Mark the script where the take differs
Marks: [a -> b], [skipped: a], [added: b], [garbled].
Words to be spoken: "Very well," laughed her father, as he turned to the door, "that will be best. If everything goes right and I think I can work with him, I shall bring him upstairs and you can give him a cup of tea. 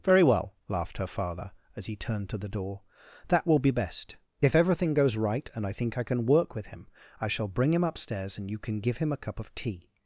"Very well," laughed her father, as he turned to the door, "that will be best. If everything goes right and I think I can work with him, I shall bring him upstairs and you can give him a cup of tea.